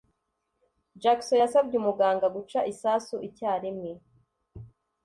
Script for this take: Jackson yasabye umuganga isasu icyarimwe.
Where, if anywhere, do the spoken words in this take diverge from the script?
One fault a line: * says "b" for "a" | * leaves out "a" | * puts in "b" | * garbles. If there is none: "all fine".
* puts in "guca"